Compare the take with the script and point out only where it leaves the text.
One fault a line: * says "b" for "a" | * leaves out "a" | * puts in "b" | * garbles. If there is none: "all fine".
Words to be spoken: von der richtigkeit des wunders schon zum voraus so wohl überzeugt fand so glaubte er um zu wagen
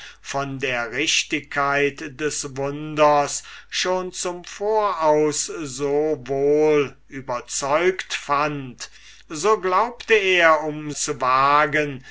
all fine